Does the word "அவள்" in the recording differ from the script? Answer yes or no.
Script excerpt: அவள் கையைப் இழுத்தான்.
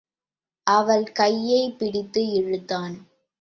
no